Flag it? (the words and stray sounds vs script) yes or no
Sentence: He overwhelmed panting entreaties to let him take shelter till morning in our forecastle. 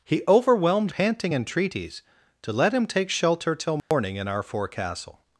yes